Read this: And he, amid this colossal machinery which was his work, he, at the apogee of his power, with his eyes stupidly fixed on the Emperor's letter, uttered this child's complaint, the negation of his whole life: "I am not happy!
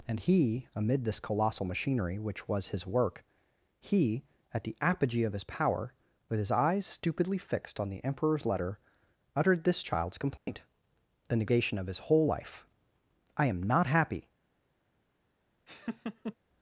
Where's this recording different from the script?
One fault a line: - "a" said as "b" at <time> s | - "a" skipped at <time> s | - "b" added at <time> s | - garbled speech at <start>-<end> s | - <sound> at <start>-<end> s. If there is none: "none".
- dropout at 10.4-10.5 s
- laugh at 15.7-16.4 s